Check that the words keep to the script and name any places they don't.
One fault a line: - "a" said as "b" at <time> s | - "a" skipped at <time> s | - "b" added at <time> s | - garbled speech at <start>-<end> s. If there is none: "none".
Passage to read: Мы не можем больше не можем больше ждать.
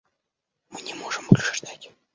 - "не можем больше" skipped at 1.6 s